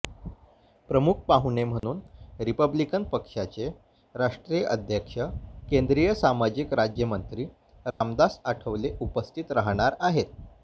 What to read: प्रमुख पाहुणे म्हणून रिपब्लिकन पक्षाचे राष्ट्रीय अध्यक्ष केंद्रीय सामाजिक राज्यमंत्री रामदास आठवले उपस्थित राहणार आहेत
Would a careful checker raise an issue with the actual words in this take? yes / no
no